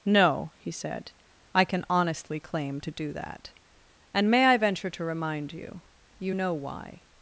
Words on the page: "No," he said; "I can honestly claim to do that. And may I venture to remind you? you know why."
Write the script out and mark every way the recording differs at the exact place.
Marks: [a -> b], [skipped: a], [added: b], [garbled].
"No," he said; "I can honestly claim to do that. And may I venture to remind you? you know why."